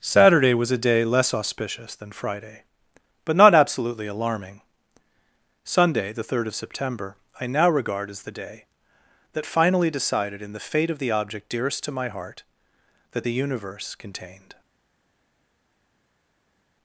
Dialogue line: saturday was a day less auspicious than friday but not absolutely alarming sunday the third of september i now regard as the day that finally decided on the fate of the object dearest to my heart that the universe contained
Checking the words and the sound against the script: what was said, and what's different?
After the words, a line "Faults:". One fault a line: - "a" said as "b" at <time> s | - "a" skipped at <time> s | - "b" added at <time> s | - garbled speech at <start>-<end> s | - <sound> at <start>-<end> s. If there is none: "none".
saturday was a day less auspicious than friday but not absolutely alarming sunday the third of september i now regard as the day that finally decided in the fate of the object dearest to my heart that the universe contained
Faults:
- "on" said as "in" at 10.4 s